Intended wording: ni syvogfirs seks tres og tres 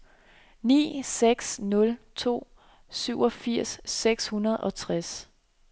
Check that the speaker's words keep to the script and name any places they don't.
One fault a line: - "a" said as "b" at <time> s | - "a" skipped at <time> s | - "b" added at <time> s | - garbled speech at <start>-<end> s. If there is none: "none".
- "seks nul to" added at 1.0 s
- "tres" said as "hundrede" at 4.2 s